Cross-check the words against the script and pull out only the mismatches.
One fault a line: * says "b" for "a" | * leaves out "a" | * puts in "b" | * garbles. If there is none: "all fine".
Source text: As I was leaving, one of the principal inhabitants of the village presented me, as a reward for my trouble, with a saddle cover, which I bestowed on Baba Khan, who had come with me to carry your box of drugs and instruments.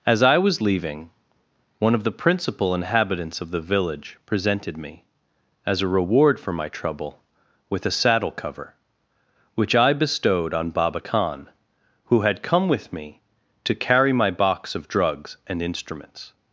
* says "my" for "your"